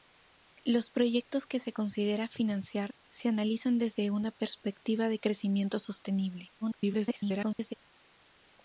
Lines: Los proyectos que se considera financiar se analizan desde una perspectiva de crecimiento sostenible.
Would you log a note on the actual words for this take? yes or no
yes